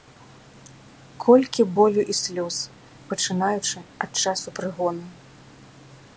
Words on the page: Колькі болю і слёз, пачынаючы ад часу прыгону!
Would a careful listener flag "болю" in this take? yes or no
no